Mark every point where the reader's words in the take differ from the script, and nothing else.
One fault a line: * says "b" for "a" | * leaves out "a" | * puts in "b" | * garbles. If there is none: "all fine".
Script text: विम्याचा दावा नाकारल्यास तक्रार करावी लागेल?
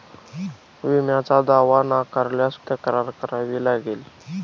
all fine